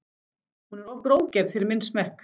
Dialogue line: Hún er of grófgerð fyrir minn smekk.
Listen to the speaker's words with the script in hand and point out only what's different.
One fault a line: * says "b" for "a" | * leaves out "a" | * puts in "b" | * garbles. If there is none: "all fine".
all fine